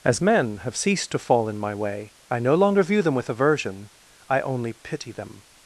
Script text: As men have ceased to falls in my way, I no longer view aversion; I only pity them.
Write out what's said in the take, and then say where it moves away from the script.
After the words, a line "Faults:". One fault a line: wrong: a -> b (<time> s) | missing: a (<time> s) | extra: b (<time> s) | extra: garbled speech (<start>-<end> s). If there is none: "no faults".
As men have ceased to fall in my way, I no longer view them with aversion; I only pity them.
Faults:
wrong: falls -> fall (1.2 s)
extra: them with (3.0 s)